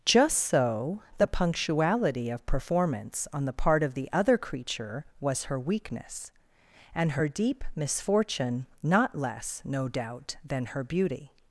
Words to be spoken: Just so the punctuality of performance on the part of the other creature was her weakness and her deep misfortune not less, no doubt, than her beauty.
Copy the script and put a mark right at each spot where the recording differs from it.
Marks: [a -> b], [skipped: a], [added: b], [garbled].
Just so the punctuality of performance on the part of the other creature was her weakness and her deep misfortune not less, no doubt, than her beauty.